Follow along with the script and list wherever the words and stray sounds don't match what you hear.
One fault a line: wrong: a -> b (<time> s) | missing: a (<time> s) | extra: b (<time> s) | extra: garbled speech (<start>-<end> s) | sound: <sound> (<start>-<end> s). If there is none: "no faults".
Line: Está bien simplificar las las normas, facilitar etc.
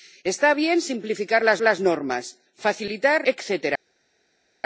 no faults